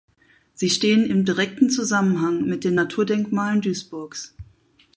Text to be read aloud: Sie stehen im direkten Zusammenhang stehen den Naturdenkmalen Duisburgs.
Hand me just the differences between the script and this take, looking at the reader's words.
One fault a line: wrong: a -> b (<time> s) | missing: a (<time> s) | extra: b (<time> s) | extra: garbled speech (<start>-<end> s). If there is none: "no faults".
wrong: stehen -> mit (2.4 s)